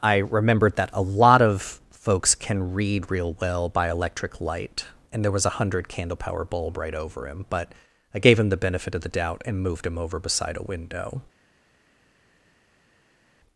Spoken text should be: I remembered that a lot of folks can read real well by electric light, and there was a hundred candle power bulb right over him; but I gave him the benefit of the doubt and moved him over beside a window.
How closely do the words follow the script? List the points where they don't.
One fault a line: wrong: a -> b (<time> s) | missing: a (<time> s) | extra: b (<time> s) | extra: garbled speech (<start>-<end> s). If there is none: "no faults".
no faults